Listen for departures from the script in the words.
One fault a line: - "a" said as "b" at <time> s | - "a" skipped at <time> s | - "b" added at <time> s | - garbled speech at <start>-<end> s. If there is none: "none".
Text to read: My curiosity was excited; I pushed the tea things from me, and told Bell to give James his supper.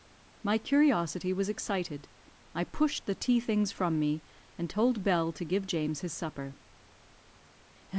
none